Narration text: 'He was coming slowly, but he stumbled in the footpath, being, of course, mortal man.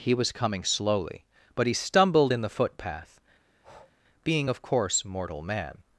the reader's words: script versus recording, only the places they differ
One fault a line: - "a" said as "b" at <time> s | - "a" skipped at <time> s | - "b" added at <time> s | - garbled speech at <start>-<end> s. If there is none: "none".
none